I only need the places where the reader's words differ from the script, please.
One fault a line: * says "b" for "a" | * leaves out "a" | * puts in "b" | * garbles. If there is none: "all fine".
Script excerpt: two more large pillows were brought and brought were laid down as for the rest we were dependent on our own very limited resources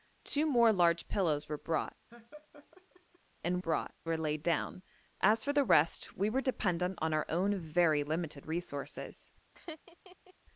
all fine